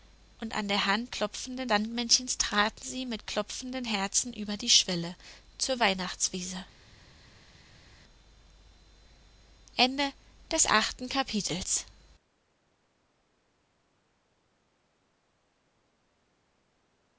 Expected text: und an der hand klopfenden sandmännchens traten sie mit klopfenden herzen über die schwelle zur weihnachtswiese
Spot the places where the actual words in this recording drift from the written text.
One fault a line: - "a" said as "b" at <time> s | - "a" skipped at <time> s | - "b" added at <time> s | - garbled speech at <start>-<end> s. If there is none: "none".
none